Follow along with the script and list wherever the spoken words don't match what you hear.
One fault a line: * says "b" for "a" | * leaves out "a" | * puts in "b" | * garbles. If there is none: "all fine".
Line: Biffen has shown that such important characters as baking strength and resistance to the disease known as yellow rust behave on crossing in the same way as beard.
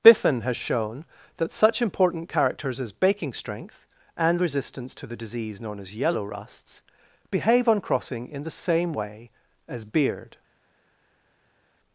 * says "rusts" for "rust"